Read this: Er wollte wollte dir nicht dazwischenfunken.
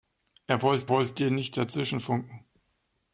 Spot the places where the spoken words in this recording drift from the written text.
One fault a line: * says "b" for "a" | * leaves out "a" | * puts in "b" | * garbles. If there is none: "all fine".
all fine